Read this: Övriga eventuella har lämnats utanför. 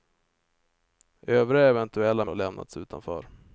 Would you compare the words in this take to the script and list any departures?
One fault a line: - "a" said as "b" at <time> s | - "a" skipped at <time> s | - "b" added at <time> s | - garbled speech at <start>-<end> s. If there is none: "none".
none